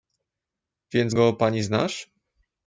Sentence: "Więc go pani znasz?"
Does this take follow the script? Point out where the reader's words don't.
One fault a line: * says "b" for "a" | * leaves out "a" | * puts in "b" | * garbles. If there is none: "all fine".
all fine